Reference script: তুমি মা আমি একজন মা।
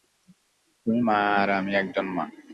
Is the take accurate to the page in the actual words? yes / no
no